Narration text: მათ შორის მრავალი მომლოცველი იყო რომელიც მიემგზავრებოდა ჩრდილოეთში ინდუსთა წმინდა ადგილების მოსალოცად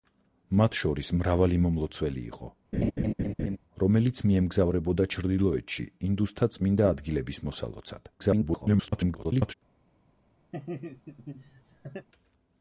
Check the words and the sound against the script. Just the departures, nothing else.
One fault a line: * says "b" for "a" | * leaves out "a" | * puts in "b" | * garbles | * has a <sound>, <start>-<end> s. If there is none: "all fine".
* has a laugh, 2.7-3.6 s
* garbles
* has a laugh, 10.5-12.1 s